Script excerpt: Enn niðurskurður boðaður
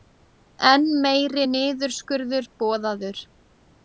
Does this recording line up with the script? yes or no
no